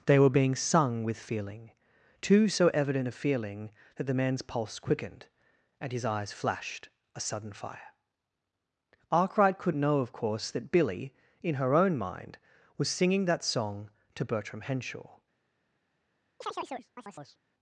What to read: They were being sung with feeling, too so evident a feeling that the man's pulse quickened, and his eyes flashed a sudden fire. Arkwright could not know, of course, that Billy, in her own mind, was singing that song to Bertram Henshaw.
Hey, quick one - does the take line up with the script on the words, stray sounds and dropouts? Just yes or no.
no